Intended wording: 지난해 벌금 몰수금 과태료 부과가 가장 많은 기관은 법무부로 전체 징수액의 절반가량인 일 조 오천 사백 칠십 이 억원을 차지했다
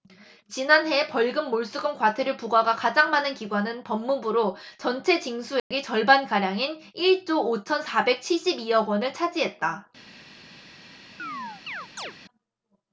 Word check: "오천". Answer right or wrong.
right